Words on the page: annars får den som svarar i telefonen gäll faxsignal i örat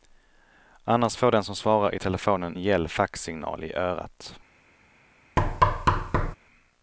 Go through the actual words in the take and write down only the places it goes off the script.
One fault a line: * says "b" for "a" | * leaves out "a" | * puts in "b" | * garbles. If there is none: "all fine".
all fine